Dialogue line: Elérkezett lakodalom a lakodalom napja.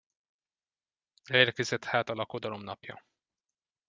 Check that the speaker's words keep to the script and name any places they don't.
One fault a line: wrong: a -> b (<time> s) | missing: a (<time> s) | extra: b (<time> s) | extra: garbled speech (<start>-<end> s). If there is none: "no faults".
wrong: lakodalom -> hát (1.8 s)